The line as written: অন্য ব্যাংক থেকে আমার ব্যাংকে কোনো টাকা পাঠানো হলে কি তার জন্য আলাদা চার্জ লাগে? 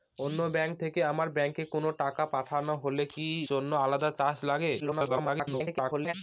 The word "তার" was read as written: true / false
false